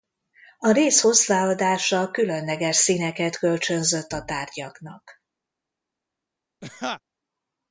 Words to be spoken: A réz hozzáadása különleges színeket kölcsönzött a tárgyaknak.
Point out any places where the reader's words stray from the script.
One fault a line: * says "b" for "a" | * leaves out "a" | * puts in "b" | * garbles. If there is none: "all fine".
all fine